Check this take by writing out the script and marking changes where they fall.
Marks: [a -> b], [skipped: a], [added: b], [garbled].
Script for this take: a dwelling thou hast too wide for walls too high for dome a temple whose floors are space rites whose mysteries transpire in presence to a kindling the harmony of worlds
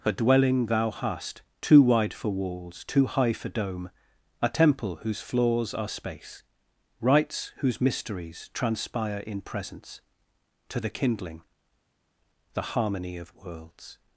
a dwelling thou hast too wide for walls too high for dome a temple whose floors are space rites whose mysteries transpire in presence to [a -> the] kindling the harmony of worlds